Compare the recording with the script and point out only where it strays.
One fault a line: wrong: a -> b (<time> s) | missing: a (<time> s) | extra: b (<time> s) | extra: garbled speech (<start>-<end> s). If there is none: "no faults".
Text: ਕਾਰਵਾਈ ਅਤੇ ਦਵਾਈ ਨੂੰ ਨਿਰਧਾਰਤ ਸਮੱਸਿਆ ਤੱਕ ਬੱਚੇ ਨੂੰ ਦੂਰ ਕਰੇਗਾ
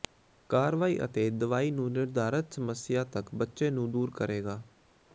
no faults